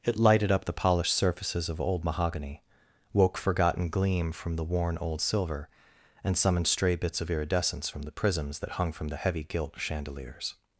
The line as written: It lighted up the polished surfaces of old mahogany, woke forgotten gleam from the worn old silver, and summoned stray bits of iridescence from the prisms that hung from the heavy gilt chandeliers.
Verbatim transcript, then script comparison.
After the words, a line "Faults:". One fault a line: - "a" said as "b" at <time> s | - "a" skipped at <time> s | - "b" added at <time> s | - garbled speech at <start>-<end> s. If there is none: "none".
It lighted up the polished surfaces of old mahogany, woke forgotten gleam from the worn old silver, and summoned stray bits of iridescence from the prisms that hung from the heavy gilt chandeliers.
Faults:
none